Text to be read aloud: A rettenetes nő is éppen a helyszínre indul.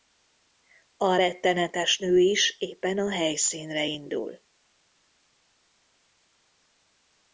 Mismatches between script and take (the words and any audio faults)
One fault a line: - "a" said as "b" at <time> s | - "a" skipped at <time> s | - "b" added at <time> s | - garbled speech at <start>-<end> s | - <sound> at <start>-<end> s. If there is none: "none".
none